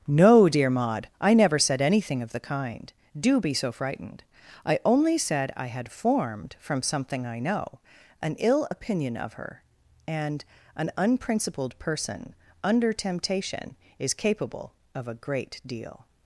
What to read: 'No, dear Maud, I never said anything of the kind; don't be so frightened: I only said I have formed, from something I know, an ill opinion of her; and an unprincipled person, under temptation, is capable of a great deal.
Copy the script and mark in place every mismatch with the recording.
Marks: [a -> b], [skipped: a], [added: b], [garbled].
'No, dear Maud, I never said anything of the kind; [don't -> do] be so frightened: I only said I [have -> had] formed, from something I know, an ill opinion of her; and an unprincipled person, under temptation, is capable of a great deal.